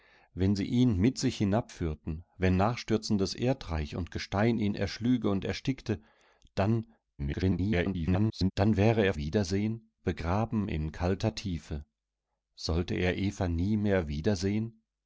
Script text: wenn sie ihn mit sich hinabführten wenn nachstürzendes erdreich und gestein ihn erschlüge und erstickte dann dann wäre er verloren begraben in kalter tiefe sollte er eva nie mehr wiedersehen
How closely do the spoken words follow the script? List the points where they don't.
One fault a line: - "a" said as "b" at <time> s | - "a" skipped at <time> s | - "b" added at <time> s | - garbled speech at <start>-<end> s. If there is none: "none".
- garbled speech at 7.2-8.5 s
- "verloren" said as "wiedersehen" at 9.1 s